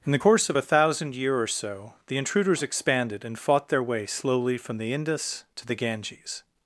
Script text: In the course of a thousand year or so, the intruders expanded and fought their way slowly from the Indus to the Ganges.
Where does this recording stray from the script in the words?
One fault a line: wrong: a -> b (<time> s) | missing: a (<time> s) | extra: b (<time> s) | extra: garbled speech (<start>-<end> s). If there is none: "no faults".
no faults